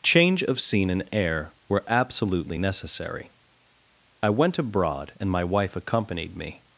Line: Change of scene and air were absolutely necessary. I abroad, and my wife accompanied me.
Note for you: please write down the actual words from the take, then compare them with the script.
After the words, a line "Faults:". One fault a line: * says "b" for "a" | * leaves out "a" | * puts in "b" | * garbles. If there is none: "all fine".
Change of scene and air were absolutely necessary. I went abroad, and my wife accompanied me.
Faults:
* puts in "went"